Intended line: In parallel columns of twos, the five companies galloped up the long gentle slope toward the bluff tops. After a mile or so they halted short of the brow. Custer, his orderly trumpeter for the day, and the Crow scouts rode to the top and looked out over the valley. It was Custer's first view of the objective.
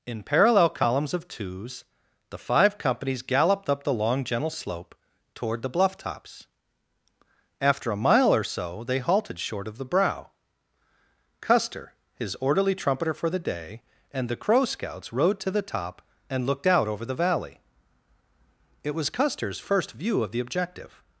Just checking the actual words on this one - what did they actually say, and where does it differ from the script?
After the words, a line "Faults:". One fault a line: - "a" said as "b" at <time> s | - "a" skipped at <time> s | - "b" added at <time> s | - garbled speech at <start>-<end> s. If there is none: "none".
In parallel columns of twos, the five companies galloped up the long gentle slope toward the bluff tops. After a mile or so they halted short of the brow. Custer, his orderly trumpeter for the day, and the Crow scouts rode to the top and looked out over the valley. It was Custer's first view of the objective.
Faults:
none